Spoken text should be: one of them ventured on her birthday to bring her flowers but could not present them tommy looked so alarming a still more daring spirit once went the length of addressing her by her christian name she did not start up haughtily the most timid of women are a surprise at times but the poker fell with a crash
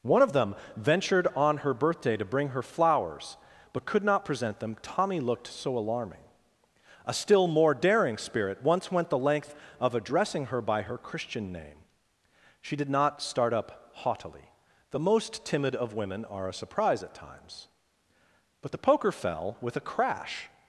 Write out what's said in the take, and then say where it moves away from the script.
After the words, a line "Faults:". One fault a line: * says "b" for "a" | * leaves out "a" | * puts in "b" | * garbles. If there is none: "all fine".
one of them ventured on her birthday to bring her flowers but could not present them tommy looked so alarming a still more daring spirit once went the length of addressing her by her christian name she did not start up haughtily the most timid of women are a surprise at times but the poker fell with a crash
Faults:
all fine